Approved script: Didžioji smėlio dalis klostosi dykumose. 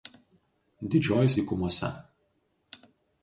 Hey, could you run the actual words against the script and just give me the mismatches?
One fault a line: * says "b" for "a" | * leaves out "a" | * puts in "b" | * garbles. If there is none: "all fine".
* leaves out "smėlio dalis klostosi"